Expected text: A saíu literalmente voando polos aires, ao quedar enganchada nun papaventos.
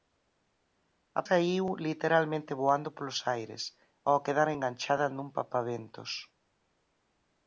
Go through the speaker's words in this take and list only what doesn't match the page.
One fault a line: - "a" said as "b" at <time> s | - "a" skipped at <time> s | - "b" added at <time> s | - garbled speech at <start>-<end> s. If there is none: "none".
none